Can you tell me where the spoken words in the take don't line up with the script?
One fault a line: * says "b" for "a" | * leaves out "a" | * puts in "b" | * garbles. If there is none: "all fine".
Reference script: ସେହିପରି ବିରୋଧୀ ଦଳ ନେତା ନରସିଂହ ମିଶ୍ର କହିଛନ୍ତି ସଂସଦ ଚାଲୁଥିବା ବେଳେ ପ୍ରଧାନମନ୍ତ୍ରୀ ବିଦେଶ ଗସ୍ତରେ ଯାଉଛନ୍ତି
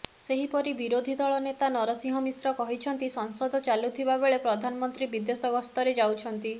all fine